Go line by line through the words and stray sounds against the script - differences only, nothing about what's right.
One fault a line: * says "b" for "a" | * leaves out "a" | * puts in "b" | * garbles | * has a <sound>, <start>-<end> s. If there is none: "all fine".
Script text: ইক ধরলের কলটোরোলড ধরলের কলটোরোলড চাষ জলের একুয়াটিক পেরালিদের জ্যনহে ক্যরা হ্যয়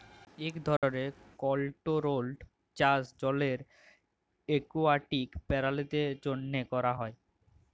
* has a dropout, 0.8-0.8 s
* leaves out "ধরলের কলটোরোলড"